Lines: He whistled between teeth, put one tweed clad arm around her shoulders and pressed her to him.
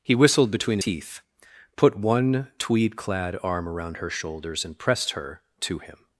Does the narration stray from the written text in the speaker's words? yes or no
no